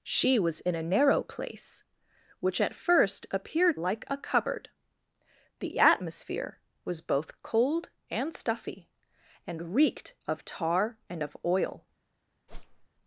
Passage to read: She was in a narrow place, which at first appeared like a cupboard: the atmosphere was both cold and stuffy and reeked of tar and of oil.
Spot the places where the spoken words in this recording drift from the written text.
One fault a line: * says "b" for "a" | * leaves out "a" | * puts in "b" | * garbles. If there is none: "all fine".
all fine